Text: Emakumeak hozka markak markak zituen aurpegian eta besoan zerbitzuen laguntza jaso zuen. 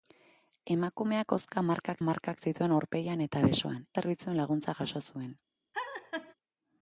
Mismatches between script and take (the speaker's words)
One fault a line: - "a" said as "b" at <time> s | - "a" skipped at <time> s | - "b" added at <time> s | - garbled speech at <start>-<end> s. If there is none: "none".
none